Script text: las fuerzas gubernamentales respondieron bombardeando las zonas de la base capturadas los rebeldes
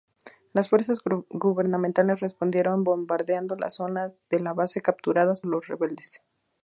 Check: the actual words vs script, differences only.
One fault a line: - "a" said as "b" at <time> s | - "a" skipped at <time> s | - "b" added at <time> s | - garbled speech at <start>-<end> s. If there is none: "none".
none